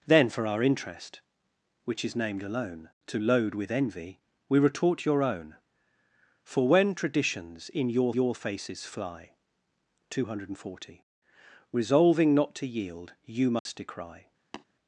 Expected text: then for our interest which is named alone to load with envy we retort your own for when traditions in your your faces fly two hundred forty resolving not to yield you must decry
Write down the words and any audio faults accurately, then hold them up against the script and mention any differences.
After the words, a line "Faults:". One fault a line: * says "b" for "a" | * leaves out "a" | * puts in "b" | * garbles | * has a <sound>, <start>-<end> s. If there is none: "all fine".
then for our interest which is named alone to load with envy we retort your own for when traditions in your your faces fly two hundred forty resolving not to yield you must decry
Faults:
* has a dropout, 13.6-13.7 s
* has a tap, 14.5-14.7 s